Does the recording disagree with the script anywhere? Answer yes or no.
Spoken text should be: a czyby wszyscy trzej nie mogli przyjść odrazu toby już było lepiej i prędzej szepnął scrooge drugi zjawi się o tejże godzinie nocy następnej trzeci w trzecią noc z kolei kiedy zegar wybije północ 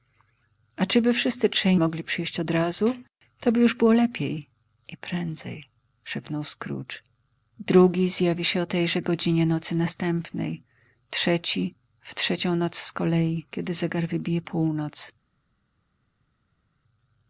yes